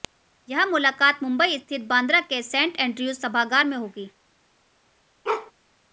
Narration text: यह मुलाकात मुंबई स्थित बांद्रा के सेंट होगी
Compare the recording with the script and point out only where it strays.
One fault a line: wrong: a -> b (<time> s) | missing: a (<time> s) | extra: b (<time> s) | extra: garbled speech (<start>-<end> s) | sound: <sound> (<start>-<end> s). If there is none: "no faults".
extra: एंड्रयूज सभागार में (2.8 s)
sound: bark (5.2-5.5 s)